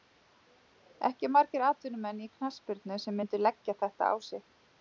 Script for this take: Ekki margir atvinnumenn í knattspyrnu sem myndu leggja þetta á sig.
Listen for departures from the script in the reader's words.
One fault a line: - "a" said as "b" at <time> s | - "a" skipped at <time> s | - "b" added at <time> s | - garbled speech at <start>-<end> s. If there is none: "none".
none